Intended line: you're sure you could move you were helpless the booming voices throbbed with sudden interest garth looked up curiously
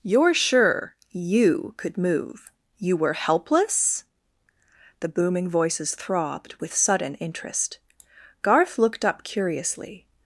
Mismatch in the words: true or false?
false